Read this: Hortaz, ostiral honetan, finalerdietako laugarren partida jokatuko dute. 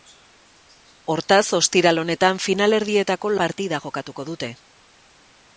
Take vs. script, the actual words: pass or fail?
fail